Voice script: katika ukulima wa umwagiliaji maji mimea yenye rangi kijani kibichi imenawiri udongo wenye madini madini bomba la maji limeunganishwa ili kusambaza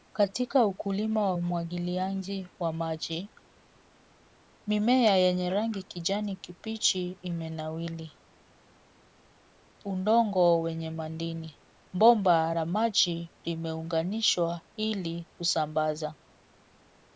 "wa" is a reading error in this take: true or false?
false